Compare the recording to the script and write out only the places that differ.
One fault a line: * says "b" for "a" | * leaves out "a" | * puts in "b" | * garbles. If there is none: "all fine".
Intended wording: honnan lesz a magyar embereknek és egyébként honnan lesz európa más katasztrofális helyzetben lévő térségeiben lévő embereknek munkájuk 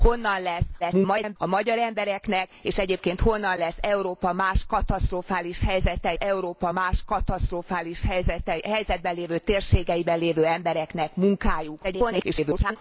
* garbles
* puts in "európa más katasztrofális"
* garbles